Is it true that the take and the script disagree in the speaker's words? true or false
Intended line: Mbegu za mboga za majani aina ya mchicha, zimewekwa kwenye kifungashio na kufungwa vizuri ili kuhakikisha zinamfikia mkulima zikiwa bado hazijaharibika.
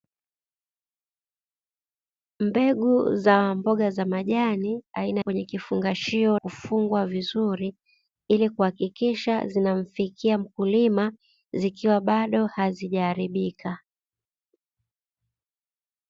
true